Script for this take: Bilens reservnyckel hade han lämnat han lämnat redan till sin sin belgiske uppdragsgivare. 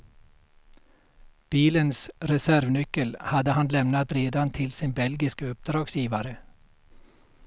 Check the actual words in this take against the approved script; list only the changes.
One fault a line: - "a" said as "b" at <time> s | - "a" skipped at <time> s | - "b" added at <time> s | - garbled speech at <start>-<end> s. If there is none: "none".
- "han lämnat" skipped at 4.1 s
- "sin" skipped at 4.9 s